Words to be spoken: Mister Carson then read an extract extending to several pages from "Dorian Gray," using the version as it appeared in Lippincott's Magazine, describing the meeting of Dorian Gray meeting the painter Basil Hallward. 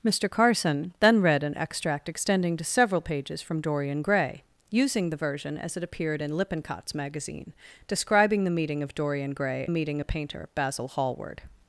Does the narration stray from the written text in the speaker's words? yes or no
no